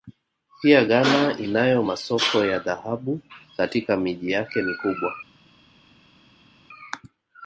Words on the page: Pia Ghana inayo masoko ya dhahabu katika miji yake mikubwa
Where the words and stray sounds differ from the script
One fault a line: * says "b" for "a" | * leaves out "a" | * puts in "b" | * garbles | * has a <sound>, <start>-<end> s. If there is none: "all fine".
all fine